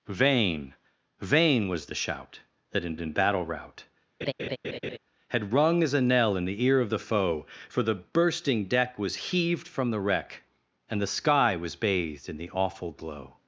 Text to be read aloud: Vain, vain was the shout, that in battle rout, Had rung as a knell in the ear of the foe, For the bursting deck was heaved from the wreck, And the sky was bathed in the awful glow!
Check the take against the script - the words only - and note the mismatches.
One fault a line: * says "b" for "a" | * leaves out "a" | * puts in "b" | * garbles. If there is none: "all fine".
* puts in "in"